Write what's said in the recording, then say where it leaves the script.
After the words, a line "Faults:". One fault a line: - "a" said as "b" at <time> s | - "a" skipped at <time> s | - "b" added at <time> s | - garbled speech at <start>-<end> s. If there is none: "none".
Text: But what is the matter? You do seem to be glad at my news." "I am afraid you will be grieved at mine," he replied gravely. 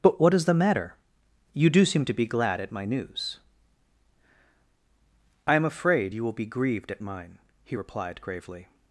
But what is the matter? You do seem to be glad at my news." "I am afraid you will be grieved at mine," he replied gravely.
Faults:
none